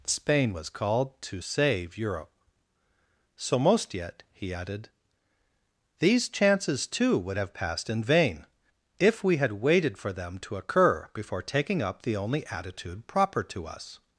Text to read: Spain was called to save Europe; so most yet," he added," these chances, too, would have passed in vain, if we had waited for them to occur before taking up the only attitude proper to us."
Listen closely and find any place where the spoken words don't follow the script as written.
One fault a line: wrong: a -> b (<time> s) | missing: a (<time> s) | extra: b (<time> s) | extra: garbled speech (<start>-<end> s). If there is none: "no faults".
no faults